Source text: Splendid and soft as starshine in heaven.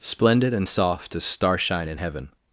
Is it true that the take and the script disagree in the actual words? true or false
false